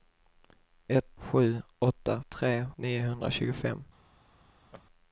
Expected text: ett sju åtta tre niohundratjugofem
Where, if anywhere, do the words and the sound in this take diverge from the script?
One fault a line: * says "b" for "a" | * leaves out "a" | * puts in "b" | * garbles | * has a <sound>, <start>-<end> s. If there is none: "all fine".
* has a laugh, 4.7-4.8 s